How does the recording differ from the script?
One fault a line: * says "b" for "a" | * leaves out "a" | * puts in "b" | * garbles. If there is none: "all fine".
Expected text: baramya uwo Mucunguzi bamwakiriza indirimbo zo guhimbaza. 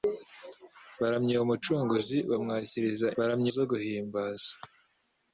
* says "baramya" for "indirimbo"